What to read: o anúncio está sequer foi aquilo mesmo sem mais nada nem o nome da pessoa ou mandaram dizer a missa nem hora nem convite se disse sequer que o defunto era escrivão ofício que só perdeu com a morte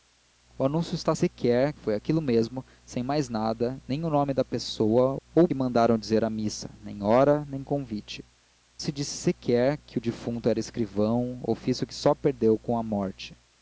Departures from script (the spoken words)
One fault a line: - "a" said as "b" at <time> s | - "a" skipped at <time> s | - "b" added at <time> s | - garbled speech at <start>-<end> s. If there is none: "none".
none